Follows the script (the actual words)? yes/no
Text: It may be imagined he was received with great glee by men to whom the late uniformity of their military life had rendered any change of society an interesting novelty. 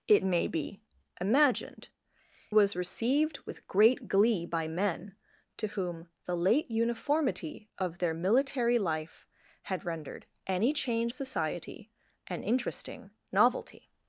no